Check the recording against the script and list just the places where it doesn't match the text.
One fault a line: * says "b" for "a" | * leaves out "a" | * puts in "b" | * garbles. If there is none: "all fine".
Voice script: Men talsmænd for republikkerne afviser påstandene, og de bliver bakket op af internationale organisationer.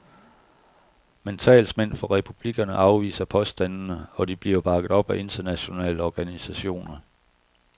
all fine